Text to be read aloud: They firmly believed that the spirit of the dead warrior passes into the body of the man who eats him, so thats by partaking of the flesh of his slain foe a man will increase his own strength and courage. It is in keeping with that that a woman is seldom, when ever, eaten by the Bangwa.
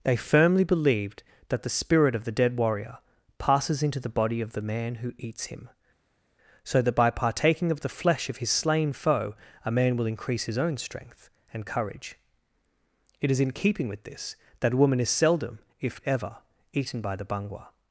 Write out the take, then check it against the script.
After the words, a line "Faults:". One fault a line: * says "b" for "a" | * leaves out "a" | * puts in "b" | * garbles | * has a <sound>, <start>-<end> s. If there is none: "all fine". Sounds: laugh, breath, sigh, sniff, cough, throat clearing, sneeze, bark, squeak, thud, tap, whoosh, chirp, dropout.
They firmly believed that the spirit of the dead warrior passes into the body of the man who eats him, so that by partaking of the flesh of his slain foe a man will increase his own strength and courage. It is in keeping with this that a woman is seldom, if ever, eaten by the Bangwa.
Faults:
* says "that" for "thats"
* says "this" for "that"
* says "if" for "when"